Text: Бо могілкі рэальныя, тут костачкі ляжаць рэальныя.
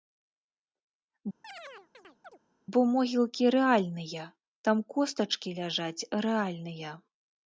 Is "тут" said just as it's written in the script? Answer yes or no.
no